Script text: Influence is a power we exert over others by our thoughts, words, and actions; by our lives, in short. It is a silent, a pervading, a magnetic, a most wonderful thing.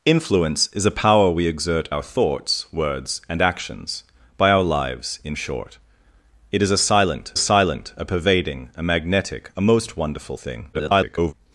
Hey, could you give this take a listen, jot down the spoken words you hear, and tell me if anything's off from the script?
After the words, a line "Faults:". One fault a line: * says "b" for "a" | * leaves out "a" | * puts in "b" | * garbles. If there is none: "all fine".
Influence is a power we exert our thoughts, words, and actions; by our lives, in short. It is a silent silent, a pervading, a magnetic, a most wonderful thing. [garbled]
Faults:
* leaves out "over others by"
* puts in "silent"
* garbles